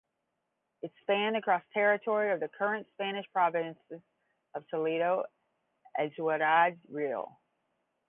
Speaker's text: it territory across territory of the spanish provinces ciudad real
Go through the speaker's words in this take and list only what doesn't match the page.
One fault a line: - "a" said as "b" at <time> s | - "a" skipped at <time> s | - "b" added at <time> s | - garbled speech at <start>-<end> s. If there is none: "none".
- "territory" said as "spanned" at 1.0 s
- "current" added at 2.5 s
- "of toledo and" added at 4.5 s